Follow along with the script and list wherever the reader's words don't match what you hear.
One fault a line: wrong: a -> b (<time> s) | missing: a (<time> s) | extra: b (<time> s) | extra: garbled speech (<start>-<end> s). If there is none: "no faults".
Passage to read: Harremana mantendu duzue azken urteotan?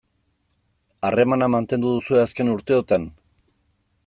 no faults